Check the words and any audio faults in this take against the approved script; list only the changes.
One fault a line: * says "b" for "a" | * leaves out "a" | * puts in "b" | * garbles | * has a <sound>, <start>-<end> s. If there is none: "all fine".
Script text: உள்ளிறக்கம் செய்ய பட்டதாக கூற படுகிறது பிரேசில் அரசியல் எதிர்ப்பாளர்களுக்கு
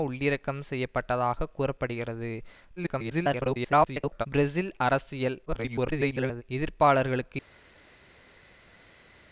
* garbles
* garbles